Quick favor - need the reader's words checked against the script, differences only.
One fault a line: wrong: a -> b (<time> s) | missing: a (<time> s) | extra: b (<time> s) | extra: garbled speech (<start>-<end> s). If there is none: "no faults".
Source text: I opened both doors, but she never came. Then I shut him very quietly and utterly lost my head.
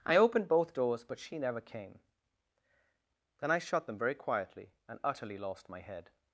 wrong: him -> them (3.9 s)